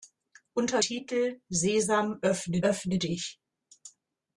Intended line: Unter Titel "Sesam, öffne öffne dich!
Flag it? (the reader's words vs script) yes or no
no